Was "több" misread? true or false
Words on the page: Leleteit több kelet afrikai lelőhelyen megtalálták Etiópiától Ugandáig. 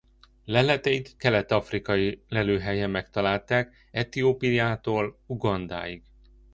true